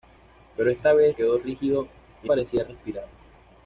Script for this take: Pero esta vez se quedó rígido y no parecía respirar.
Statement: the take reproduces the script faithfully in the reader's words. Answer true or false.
false